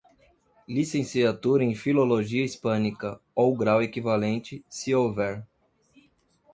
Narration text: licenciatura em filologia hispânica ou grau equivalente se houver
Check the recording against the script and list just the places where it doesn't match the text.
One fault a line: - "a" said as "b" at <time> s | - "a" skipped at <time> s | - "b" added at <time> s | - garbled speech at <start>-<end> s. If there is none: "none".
none